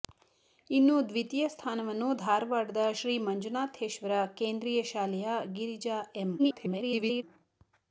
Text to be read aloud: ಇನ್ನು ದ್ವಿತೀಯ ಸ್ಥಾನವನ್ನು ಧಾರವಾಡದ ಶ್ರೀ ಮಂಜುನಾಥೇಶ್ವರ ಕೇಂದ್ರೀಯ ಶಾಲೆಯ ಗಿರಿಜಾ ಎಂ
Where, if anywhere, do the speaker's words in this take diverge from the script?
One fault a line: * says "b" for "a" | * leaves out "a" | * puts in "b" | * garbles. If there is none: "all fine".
* garbles